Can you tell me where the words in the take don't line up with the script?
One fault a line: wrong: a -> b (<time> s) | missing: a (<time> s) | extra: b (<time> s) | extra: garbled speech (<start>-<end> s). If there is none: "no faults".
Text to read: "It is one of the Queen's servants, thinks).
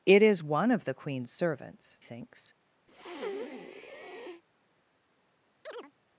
no faults